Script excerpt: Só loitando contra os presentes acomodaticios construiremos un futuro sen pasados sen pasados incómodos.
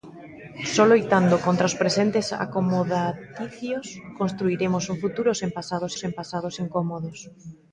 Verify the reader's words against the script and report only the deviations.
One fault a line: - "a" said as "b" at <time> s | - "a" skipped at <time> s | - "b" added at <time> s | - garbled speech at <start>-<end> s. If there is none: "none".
none